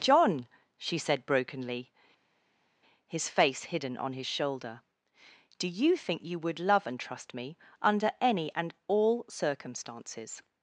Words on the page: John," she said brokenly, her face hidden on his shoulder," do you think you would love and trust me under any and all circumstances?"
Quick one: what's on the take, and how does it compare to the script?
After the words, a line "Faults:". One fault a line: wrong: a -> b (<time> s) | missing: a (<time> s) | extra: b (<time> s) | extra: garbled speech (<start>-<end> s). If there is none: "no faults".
John," she said brokenly, his face hidden on his shoulder," do you think you would love and trust me under any and all circumstances?"
Faults:
wrong: her -> his (3.1 s)